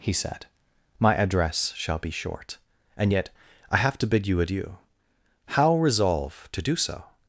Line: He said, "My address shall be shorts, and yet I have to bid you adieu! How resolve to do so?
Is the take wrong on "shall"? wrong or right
right